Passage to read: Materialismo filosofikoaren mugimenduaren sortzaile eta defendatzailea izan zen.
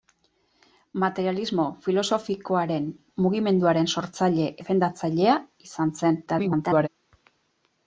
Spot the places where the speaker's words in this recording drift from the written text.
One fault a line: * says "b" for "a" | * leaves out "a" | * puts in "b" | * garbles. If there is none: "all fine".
* leaves out "eta"
* garbles